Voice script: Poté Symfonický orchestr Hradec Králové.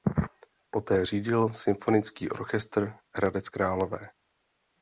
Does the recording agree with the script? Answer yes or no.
no